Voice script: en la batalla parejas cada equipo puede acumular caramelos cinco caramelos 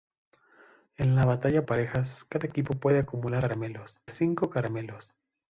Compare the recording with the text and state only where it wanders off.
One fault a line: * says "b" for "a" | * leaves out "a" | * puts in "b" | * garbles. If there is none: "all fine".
all fine